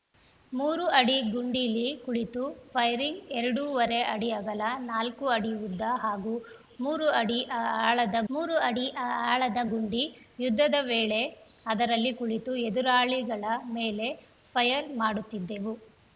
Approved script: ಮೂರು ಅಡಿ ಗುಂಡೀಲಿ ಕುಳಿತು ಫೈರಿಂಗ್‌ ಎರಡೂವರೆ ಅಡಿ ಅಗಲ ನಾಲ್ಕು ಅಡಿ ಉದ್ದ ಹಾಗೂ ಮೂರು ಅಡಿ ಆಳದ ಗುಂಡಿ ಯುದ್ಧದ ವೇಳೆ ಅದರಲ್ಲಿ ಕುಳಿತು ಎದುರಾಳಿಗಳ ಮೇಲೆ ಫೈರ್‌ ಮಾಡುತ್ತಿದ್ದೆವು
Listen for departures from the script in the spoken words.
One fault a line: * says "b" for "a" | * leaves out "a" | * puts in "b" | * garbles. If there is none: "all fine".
* puts in "ಮೂರು ಅಡಿ ಆಳದ"